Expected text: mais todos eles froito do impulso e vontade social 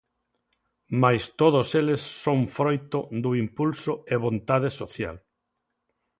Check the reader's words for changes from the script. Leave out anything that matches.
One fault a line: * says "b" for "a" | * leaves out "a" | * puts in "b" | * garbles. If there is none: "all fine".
* puts in "son"